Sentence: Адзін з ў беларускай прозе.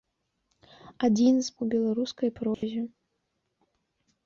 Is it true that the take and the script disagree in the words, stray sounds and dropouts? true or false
true